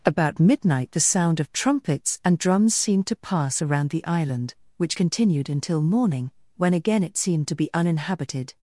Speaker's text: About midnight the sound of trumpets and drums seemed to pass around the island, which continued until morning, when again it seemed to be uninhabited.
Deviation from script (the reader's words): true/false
false